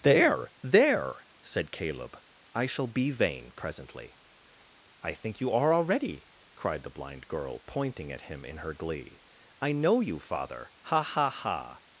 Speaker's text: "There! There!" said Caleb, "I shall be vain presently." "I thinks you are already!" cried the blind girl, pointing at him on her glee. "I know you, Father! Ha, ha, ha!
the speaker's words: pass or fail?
fail